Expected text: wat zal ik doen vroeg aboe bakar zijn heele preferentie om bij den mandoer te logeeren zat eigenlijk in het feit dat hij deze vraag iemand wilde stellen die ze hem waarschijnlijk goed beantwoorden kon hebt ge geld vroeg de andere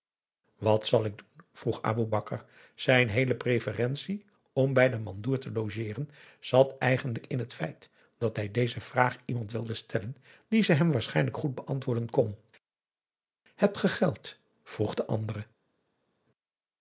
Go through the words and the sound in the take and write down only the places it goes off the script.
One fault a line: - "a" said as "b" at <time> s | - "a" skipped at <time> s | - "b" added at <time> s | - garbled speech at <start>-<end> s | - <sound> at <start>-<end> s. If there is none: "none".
none